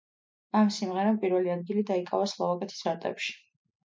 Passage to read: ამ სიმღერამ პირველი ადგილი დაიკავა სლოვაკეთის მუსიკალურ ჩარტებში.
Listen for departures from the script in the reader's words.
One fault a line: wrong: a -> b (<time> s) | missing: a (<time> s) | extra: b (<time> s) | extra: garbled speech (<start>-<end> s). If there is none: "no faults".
missing: მუსიკალურ (2.9 s)